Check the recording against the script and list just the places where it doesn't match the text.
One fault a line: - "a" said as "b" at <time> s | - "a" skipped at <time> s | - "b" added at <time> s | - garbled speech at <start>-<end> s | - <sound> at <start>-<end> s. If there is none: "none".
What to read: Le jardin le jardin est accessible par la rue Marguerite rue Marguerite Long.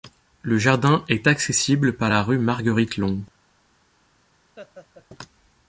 - "le jardin" skipped at 1.1 s
- "rue Marguerite" skipped at 3.0 s
- laugh at 4.6-5.1 s